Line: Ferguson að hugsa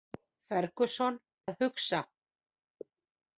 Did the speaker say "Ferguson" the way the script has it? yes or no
yes